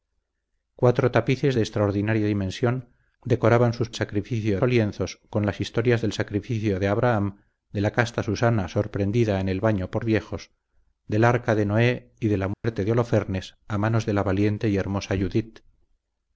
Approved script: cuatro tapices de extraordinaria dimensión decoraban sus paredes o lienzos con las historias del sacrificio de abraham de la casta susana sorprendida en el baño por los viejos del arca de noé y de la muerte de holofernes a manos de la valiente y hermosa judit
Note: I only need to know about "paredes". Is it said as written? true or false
false